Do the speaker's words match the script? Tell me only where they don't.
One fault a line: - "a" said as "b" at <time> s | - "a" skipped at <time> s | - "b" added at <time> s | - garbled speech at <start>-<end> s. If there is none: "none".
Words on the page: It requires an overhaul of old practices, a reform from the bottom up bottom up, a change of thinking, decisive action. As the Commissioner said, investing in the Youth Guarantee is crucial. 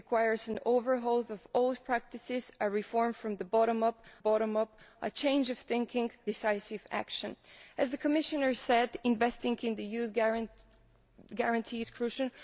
none